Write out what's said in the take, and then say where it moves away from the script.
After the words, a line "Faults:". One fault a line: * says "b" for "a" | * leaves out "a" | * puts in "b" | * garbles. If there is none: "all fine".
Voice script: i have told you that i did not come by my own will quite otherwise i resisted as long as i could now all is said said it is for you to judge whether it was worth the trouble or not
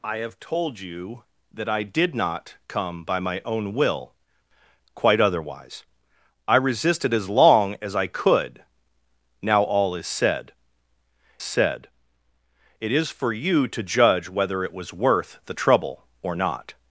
i have told you that i did not come by my own will quite otherwise i resisted as long as i could now all is said said it is for you to judge whether it was worth the trouble or not
Faults:
all fine